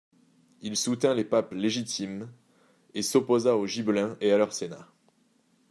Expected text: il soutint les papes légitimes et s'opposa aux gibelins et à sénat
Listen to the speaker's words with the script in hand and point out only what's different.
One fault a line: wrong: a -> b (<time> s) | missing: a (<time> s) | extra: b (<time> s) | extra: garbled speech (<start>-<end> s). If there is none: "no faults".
extra: leur (4.4 s)